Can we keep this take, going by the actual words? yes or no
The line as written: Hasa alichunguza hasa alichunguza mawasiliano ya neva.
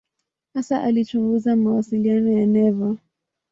no